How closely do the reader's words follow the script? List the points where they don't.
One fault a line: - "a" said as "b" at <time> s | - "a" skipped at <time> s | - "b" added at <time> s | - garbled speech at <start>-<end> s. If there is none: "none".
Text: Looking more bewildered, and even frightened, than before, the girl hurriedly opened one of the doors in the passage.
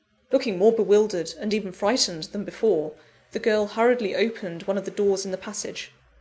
none